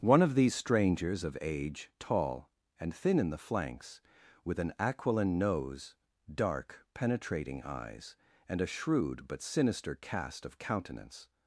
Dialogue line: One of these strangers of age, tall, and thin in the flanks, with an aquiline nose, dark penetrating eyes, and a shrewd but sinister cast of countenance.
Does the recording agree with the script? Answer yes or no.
yes